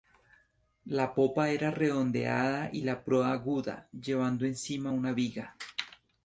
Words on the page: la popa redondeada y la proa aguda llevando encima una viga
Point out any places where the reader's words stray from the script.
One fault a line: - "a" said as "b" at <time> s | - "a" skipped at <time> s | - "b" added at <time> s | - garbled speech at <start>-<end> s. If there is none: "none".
- "era" added at 1.5 s